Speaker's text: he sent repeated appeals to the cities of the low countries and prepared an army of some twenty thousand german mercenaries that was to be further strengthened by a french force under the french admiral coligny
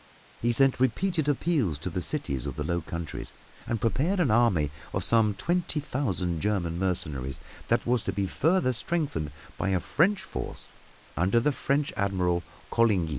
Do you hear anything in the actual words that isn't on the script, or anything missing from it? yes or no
no